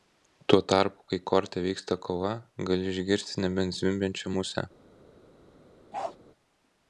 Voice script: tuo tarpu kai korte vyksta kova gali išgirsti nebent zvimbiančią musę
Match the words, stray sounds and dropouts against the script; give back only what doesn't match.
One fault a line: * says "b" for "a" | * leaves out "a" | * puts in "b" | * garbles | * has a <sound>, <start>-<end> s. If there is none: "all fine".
* has a bark, 5.9-6.2 s